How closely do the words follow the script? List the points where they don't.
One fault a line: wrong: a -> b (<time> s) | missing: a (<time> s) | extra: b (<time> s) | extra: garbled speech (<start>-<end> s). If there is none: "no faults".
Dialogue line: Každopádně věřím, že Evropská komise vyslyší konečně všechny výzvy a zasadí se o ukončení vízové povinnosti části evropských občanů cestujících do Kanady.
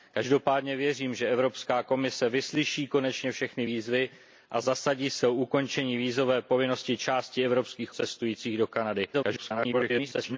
missing: občanů (7.9 s)
extra: garbled speech (9.1-10.4 s)